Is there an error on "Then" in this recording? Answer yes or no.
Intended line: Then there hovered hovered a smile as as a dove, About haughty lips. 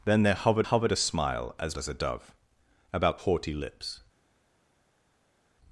no